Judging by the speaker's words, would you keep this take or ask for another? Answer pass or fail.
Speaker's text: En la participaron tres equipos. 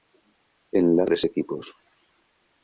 fail